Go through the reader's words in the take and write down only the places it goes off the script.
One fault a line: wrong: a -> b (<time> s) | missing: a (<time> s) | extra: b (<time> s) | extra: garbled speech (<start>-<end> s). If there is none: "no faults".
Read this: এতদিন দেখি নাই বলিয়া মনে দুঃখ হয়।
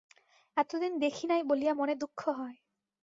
no faults